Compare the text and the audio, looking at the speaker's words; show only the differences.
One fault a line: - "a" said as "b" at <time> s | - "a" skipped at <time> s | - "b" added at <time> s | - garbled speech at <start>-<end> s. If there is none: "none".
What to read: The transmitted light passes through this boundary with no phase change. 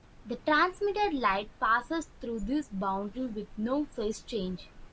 none